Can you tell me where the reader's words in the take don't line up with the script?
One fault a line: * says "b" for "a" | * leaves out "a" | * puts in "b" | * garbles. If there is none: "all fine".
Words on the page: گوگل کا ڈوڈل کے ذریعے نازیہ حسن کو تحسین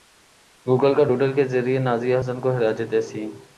* puts in "خراج"